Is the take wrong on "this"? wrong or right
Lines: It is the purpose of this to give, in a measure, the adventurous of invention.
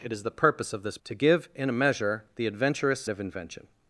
right